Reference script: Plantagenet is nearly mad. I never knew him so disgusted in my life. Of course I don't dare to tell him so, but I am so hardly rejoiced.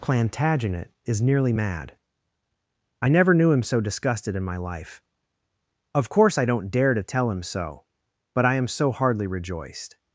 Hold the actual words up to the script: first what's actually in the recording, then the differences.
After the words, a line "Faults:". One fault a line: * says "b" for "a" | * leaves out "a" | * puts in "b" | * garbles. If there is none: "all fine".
Plantagenet is nearly mad. I never knew him so disgusted in my life. Of course I don't dare to tell him so, but I am so hardly rejoiced.
Faults:
all fine